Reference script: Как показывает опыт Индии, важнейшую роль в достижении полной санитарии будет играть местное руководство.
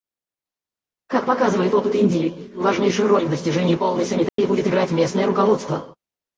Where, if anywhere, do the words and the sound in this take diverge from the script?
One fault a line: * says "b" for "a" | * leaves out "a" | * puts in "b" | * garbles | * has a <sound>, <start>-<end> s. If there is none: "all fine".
* has a dropout, 4.3-4.4 s